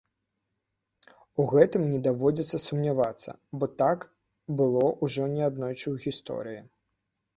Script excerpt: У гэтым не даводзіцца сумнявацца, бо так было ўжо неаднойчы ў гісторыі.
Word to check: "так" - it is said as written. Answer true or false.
true